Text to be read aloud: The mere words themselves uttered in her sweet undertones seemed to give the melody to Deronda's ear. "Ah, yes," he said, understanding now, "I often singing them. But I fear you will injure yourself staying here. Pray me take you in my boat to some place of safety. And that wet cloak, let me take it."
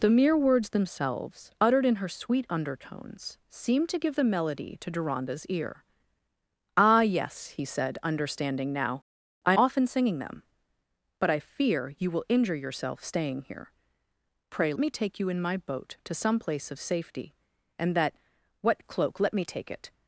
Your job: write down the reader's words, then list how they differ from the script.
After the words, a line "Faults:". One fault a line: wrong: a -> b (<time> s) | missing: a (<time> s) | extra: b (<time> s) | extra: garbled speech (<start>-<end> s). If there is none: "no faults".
The mere words themselves uttered in her sweet undertones seemed to give the melody to Deronda's ear. "Ah, yes," he said, understanding now, "I often singing them. But I fear you will injure yourself staying here. Pray me take you in my boat to some place of safety. And that wet cloak, let me take it."
Faults:
no faults